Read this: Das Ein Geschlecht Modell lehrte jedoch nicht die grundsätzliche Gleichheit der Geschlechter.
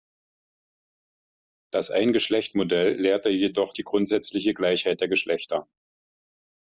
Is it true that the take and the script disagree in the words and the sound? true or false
true